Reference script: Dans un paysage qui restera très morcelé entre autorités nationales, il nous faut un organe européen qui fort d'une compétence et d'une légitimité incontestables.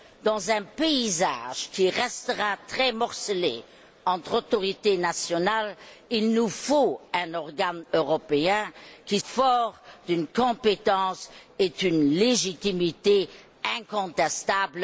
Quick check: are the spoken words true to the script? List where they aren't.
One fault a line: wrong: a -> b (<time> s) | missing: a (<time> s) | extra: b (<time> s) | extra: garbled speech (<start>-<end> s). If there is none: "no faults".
no faults